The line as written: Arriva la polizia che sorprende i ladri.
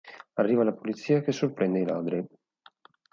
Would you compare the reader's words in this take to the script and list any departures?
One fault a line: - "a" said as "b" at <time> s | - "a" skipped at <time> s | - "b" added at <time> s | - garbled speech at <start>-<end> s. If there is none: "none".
none